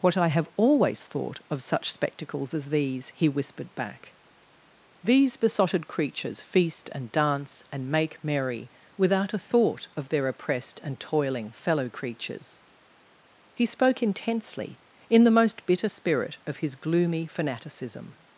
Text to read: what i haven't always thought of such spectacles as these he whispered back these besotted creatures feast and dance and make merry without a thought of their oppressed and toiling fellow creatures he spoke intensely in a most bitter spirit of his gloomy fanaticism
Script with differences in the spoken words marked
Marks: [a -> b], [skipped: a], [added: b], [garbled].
what i [haven't -> have] always thought of such spectacles as these he whispered back these besotted creatures feast and dance and make merry without a thought of their oppressed and toiling fellow creatures he spoke intensely in [a -> the] most bitter spirit of his gloomy fanaticism